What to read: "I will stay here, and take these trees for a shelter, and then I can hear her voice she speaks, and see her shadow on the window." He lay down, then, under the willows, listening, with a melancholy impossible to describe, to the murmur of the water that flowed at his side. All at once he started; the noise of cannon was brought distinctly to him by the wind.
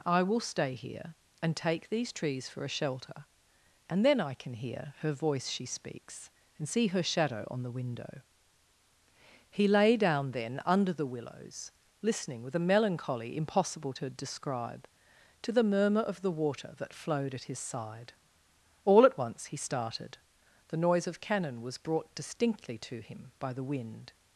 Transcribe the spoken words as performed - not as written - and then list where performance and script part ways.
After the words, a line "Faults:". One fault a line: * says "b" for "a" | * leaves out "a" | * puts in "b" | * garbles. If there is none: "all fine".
"I will stay here, and take these trees for a shelter, and then I can hear her voice she speaks, and see her shadow on the window." He lay down, then, under the willows, listening, with a melancholy impossible to describe, to the murmur of the water that flowed at his side. All at once he started; the noise of cannon was brought distinctly to him by the wind.
Faults:
all fine